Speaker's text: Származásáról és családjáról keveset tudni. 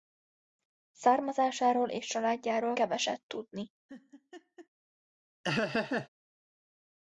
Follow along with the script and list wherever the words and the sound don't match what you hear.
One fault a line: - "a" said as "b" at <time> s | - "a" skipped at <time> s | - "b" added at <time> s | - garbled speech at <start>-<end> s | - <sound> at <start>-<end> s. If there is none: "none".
- laugh at 3.9-4.7 s
- laugh at 5.4-6.1 s